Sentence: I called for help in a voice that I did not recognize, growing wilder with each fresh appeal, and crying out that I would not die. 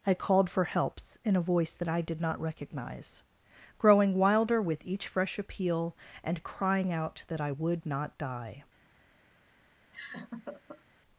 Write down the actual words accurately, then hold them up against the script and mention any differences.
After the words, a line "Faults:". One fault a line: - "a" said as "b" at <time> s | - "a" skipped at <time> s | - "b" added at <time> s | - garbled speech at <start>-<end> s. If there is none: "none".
I called for helps in a voice that I did not recognize, growing wilder with each fresh appeal, and crying out that I would not die.
Faults:
- "help" said as "helps" at 0.6 s